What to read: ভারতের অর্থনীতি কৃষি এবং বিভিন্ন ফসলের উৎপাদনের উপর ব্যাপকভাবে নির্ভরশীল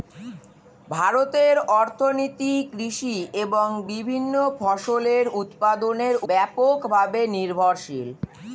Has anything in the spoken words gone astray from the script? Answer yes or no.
yes